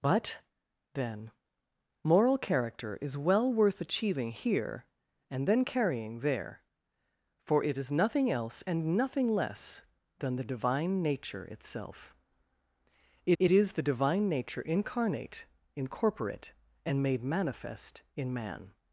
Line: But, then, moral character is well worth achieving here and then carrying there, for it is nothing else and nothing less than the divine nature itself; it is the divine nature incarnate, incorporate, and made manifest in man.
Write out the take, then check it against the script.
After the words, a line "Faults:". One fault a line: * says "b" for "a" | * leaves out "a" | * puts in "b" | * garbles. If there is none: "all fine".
But, then, moral character is well worth achieving here and then carrying there, for it is nothing else and nothing less than the divine nature itself; it it is the divine nature incarnate, incorporate, and made manifest in man.
Faults:
* puts in "it"